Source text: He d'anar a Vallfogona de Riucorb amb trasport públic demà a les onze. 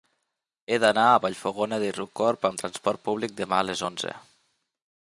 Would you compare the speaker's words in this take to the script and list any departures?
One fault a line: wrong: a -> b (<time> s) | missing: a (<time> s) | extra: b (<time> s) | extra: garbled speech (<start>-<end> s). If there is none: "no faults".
no faults